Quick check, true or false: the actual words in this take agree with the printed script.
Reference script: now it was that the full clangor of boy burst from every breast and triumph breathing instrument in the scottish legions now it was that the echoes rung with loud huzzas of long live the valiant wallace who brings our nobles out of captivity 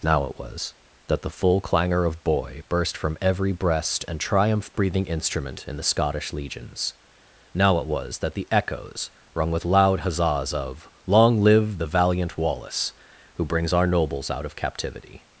true